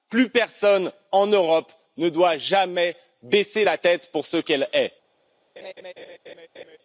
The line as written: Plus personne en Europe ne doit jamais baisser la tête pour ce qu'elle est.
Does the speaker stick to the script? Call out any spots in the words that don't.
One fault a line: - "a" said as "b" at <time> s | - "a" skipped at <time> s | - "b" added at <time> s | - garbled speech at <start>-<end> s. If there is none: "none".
none